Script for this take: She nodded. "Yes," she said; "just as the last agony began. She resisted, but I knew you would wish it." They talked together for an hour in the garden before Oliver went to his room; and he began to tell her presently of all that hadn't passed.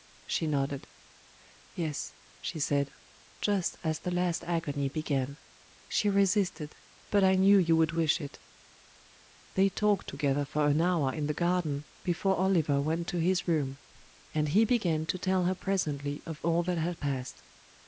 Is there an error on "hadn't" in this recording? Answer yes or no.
yes